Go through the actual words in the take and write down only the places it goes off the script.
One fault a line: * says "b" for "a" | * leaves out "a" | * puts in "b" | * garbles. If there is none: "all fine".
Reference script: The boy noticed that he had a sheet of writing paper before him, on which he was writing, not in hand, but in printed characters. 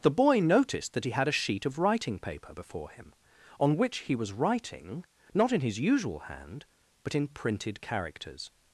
* puts in "his usual"